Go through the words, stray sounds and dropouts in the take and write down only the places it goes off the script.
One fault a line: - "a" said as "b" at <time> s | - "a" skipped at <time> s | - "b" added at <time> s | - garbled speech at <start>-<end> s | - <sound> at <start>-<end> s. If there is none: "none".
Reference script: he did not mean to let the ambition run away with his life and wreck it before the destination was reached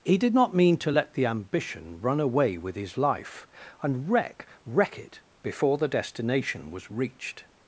- "wreck" added at 4.6 s